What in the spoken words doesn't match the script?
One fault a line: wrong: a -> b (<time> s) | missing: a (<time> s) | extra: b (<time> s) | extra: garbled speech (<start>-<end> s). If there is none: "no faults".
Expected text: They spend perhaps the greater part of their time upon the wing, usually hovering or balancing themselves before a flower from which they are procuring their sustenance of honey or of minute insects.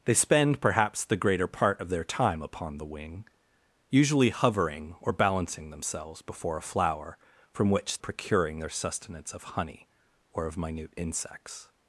missing: they are (8.0 s)